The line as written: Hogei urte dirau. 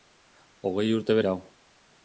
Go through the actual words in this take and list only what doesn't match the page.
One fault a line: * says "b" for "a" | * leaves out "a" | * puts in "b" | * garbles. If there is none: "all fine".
all fine